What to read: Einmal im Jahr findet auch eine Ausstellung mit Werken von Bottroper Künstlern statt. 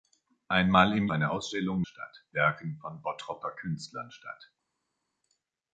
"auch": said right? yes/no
no